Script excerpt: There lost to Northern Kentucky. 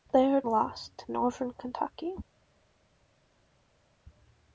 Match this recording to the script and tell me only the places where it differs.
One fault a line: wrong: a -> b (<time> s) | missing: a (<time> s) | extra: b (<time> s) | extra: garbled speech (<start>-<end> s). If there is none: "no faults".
no faults